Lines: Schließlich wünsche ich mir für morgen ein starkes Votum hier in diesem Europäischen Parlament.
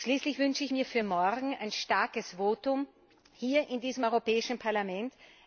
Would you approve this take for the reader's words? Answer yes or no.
yes